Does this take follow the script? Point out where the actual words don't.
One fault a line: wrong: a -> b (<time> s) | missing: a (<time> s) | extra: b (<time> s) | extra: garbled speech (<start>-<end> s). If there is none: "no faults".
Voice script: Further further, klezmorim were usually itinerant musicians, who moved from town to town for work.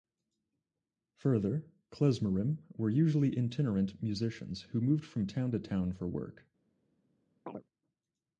missing: further (1.7 s)